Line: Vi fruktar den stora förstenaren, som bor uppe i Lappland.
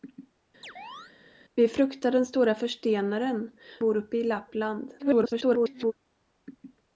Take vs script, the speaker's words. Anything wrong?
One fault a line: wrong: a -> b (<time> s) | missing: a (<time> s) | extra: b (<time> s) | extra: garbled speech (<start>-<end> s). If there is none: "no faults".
missing: som (3.5 s)
extra: garbled speech (5.0-5.9 s)